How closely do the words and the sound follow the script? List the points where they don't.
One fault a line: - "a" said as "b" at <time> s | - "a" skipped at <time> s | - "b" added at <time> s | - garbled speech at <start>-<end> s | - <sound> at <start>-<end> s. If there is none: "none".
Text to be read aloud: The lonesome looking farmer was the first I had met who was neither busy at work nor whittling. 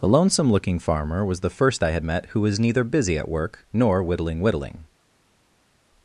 - "whittling" added at 4.4 s